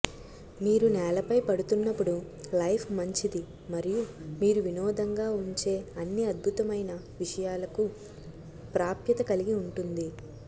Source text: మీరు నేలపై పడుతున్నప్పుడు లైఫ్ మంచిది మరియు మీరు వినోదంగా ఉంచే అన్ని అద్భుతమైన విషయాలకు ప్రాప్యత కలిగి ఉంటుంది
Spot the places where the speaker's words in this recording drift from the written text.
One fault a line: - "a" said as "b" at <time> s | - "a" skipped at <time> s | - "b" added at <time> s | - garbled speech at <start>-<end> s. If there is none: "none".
none